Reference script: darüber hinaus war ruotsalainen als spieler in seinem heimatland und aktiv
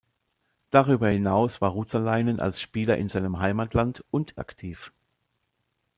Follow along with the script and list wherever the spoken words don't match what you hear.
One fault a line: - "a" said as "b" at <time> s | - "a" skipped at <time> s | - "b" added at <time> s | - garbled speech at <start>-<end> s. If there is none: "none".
none